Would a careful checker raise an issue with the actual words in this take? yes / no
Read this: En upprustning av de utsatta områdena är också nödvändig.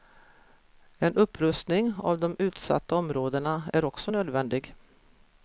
no